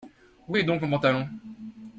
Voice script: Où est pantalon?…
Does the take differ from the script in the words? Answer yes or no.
yes